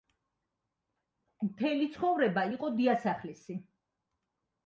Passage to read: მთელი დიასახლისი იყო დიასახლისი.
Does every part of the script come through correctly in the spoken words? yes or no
no